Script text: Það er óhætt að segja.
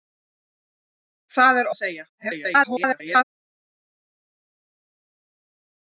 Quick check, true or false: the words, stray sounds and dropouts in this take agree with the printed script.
false